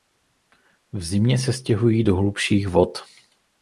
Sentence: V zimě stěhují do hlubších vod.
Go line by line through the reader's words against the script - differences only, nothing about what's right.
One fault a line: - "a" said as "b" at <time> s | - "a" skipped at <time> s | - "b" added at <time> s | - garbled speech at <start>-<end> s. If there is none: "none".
- "se" added at 1.4 s